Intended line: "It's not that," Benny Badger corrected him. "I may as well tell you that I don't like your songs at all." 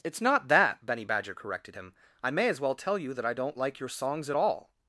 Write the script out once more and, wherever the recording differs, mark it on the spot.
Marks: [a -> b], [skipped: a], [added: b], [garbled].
"It's not that," Benny Badger corrected him. "I may as well tell you that I don't like your songs at all."